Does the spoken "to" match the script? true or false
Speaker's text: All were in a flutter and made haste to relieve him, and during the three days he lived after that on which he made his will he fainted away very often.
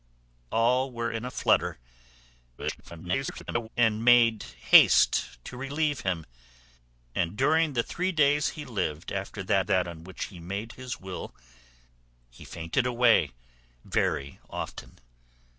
true